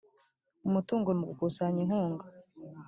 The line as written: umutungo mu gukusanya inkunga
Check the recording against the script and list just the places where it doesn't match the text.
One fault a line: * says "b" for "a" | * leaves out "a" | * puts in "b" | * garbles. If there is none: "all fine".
all fine